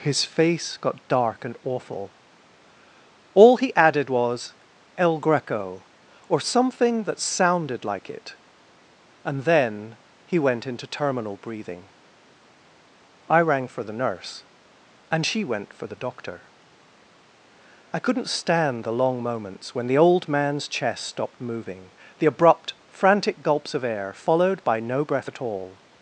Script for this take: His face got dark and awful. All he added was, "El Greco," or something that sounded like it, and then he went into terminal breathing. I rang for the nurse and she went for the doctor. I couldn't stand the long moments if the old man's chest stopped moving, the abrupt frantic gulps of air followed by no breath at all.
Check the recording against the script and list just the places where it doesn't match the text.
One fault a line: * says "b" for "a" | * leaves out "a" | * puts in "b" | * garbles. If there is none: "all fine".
* says "when" for "if"